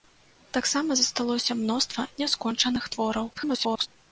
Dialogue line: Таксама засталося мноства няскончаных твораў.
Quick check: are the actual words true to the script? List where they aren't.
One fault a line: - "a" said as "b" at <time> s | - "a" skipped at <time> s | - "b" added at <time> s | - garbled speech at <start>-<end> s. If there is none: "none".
- garbled speech at 3.3-3.9 s